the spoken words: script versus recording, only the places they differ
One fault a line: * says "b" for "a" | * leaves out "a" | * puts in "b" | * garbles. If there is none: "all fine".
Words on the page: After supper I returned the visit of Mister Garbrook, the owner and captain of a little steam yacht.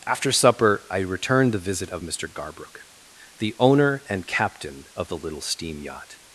* says "the" for "a"